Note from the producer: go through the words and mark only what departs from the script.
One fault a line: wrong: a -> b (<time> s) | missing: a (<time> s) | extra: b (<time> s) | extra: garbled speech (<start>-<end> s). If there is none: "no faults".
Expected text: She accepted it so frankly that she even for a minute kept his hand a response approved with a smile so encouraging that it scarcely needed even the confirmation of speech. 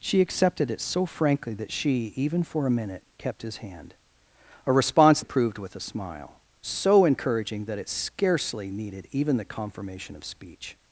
no faults